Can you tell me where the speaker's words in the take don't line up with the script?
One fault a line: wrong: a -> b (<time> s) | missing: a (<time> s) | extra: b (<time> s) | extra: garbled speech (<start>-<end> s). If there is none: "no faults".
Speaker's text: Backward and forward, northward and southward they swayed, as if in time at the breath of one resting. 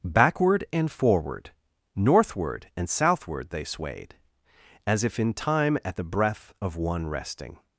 no faults